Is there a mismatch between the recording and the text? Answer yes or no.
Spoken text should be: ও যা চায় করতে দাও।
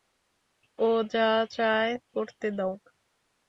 no